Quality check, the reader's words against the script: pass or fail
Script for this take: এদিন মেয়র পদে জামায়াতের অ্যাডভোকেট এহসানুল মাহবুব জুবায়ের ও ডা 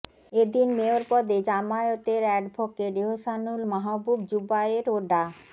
pass